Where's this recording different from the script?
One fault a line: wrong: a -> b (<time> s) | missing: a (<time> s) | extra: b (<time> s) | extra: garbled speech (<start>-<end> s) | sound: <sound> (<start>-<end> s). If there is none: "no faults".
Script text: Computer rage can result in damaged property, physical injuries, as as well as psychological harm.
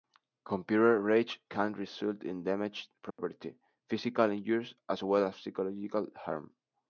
sound: dropout (3.1-3.2 s)
missing: as (5.0 s)